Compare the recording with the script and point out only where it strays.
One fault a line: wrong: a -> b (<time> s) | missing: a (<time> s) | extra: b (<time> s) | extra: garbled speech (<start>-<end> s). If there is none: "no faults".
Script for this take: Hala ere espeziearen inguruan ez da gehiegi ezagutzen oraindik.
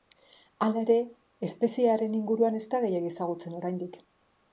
no faults